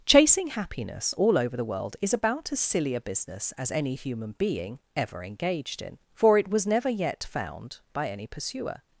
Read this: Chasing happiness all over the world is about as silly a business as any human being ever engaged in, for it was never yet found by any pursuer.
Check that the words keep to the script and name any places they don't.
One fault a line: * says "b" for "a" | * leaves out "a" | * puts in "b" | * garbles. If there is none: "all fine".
all fine